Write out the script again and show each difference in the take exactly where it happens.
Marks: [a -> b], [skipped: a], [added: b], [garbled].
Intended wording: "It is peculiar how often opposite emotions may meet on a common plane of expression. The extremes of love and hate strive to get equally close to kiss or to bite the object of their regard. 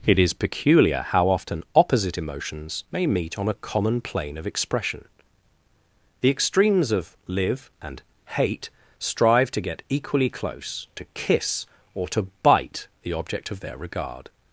"It is peculiar how often opposite emotions may meet on a common plane of expression. The extremes of [love -> live] and hate strive to get equally close to kiss or to bite the object of their regard.